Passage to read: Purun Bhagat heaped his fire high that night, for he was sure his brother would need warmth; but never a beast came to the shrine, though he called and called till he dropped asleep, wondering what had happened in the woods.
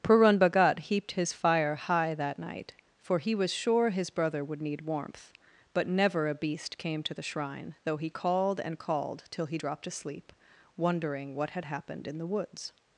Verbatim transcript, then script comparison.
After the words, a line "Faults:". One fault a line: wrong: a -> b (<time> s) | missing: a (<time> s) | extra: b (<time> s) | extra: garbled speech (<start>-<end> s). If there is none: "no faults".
Purun Bhagat heaped his fire high that night, for he was sure his brother would need warmth; but never a beast came to the shrine, though he called and called till he dropped asleep, wondering what had happened in the woods.
Faults:
no faults